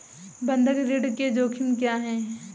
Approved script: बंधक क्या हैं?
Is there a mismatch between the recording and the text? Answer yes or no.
yes